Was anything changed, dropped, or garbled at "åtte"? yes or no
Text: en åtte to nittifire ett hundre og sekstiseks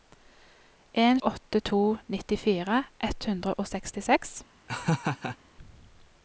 no